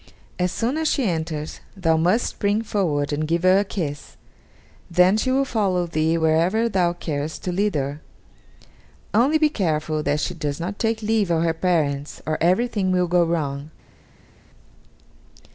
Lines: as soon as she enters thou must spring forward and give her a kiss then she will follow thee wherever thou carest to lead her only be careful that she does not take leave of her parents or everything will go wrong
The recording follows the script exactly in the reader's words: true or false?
true